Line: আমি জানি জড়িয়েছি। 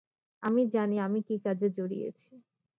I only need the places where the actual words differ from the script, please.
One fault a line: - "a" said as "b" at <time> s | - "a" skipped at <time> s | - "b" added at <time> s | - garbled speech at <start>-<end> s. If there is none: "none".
- "আমি কী কাজে" added at 1.0 s